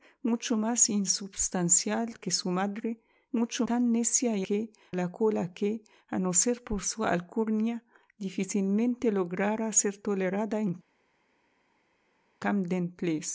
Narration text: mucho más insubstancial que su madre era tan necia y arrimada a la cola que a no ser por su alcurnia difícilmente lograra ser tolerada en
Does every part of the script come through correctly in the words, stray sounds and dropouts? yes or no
no